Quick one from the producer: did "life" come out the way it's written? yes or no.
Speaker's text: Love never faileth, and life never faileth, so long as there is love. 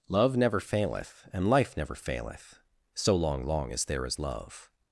yes